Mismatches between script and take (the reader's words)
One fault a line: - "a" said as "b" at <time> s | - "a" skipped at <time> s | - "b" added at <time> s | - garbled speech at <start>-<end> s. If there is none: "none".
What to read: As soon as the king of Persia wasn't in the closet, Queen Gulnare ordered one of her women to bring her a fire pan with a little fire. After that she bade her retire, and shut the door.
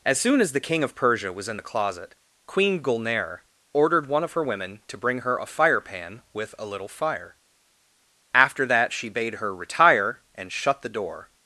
- "wasn't" said as "was" at 1.3 s